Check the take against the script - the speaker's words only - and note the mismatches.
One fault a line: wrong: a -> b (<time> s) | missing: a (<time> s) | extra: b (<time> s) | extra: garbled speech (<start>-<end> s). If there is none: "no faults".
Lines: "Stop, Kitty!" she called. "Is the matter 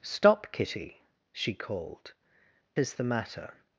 no faults